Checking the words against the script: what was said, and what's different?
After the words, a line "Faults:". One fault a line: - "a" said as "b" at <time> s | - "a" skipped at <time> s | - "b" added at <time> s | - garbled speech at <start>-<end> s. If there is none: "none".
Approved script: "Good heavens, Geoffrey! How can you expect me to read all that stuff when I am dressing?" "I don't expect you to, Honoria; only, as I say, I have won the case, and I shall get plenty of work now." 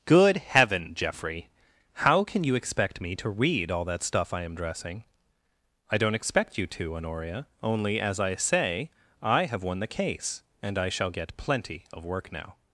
"Good heaven, Geoffrey! How can you expect me to read all that stuff I am dressing?" "I don't expect you to, Honoria; only, as I say, I have won the case, and I shall get plenty of work now."
Faults:
- "heavens" said as "heaven" at 0.4 s
- "when" skipped at 4.3 s